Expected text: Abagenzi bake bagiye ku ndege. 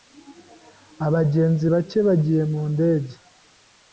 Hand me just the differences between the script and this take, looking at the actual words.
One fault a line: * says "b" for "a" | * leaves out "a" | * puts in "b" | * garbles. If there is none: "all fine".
* says "mu" for "ku"